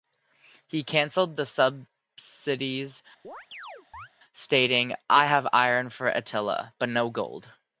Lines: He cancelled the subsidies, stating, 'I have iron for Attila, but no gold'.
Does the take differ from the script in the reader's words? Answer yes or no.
no